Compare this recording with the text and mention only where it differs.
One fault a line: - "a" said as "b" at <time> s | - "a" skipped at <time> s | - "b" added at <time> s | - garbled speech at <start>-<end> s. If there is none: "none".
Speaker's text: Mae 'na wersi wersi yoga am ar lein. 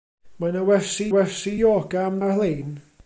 none